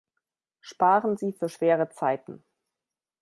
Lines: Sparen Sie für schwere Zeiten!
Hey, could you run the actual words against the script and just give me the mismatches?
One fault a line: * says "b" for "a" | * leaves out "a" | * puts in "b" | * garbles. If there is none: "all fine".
all fine